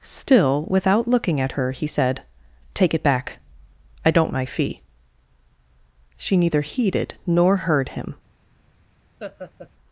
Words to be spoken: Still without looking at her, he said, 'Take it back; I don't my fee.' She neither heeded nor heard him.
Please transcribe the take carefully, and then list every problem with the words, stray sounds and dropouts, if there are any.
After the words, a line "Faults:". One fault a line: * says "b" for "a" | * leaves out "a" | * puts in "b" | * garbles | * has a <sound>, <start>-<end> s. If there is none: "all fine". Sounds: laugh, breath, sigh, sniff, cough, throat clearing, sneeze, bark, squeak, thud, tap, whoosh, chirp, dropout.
Still without looking at her, he said, 'Take it back; I don't my fee.' She neither heeded nor heard him.
Faults:
* has a laugh, 9.2-9.7 s